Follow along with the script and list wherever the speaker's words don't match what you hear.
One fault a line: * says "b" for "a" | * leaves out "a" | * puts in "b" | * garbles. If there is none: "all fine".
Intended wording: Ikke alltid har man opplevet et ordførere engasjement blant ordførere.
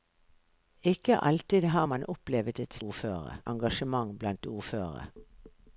all fine